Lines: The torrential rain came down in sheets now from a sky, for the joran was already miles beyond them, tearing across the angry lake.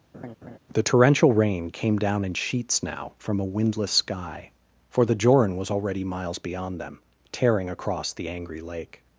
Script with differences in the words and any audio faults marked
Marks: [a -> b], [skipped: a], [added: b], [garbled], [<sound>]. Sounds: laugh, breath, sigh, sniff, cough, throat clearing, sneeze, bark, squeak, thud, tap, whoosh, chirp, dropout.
[laugh] The torrential rain came down in sheets now from a [added: windless] sky, for the joran was already miles beyond them, tearing across the angry lake.